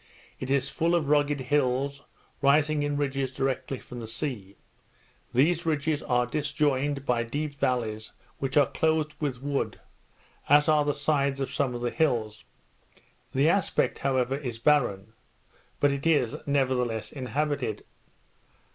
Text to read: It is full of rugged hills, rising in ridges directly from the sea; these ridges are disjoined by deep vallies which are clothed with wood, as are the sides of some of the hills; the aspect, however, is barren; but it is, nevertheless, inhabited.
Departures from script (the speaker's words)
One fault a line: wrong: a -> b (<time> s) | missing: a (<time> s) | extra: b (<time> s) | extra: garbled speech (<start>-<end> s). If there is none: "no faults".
no faults